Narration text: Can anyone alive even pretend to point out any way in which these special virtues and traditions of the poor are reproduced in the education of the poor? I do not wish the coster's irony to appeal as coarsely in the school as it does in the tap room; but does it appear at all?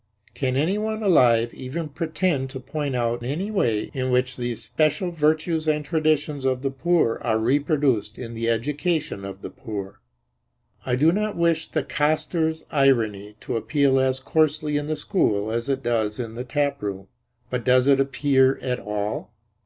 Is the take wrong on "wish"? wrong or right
right